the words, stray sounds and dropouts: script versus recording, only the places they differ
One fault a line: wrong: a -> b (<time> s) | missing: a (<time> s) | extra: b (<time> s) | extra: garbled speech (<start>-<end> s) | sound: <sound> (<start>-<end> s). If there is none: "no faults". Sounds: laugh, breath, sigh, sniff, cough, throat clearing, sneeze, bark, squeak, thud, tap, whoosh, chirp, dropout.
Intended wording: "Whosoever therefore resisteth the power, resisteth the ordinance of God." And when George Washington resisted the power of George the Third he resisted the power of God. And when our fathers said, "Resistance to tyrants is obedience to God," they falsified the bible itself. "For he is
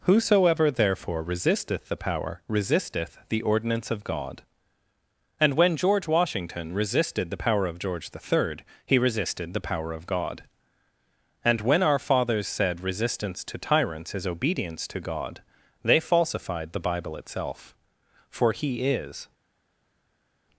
no faults